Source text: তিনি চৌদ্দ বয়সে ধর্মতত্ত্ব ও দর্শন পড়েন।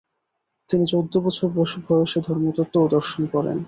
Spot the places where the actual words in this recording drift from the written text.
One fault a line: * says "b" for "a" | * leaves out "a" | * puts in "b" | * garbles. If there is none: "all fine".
* puts in "বছর"